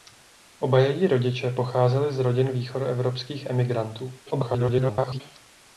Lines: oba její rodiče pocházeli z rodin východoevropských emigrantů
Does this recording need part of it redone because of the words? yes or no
yes